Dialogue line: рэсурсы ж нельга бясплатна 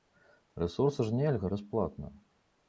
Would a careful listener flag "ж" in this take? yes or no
no